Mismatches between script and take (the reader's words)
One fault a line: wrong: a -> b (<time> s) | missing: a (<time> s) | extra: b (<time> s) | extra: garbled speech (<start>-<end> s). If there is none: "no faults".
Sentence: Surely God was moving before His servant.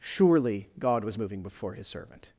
no faults